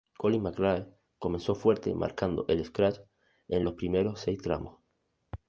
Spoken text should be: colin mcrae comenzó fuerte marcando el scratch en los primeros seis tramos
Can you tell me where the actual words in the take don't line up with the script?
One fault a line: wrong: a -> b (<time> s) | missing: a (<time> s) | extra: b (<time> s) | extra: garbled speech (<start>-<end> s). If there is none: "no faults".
no faults